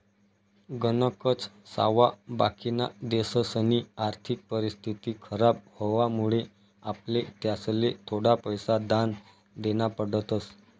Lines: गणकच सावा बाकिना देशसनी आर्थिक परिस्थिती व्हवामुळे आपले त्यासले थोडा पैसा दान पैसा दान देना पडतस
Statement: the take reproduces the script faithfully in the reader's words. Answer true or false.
false